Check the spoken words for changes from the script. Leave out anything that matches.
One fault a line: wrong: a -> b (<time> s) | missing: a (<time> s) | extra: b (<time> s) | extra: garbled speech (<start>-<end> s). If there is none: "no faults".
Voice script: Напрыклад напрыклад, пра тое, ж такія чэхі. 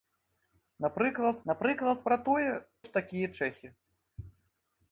no faults